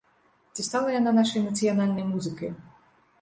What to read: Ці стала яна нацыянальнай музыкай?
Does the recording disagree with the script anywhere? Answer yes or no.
yes